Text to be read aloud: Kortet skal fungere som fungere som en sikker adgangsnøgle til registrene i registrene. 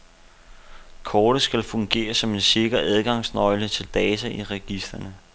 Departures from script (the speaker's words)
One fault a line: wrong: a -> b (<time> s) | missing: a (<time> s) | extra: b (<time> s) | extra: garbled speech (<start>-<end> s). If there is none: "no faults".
missing: fungere som (2.3 s)
wrong: registrene -> data (3.9 s)